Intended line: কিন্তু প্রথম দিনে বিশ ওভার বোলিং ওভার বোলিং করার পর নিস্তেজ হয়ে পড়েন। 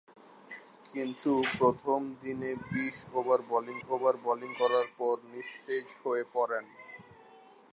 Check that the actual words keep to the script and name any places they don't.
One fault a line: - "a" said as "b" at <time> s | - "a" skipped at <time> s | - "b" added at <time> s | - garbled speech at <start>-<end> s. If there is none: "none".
none